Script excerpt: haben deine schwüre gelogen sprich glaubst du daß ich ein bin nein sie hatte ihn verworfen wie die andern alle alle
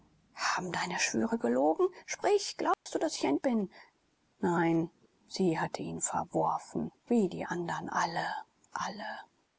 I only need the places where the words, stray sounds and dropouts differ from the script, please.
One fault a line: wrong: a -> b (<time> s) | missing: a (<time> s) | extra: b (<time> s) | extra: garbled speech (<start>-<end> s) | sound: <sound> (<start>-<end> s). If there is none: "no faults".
sound: dropout (2.7-2.9 s)